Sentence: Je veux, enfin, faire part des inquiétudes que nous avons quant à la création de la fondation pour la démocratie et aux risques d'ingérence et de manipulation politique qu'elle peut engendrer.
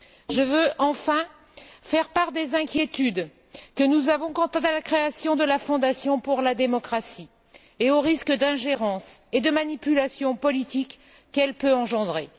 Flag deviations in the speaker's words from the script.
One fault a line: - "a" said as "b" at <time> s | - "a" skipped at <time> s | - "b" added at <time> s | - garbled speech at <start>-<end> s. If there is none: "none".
none